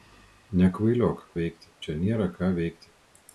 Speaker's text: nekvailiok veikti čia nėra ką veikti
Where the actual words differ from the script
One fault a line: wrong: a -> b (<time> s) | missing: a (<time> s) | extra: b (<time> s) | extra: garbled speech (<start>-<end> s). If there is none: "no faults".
no faults